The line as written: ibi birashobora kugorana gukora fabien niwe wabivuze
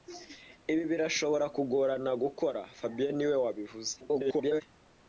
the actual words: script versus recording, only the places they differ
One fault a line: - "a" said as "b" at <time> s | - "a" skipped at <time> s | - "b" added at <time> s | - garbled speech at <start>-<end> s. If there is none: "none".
- garbled speech at 4.0-4.6 s